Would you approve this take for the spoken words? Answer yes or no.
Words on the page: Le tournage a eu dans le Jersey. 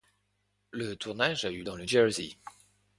yes